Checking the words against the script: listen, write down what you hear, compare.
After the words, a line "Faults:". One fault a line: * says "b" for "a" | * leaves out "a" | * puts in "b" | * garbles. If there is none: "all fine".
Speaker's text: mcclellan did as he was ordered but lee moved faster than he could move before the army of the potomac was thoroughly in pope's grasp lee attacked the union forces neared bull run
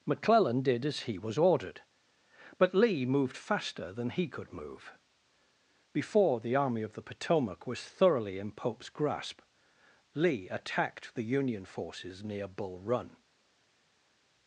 mcclellan did as he was ordered but lee moved faster than he could move before the army of the potomac was thoroughly in pope's grasp lee attacked the union forces near bull run
Faults:
* says "near" for "neared"